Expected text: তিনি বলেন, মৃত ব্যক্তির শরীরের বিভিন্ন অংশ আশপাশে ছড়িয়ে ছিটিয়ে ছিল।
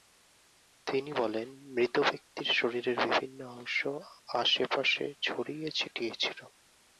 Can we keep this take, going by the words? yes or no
yes